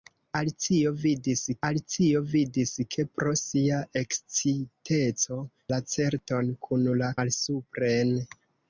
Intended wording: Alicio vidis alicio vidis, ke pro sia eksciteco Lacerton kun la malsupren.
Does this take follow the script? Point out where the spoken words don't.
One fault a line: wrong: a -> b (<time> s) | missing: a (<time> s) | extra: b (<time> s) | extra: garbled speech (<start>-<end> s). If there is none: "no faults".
no faults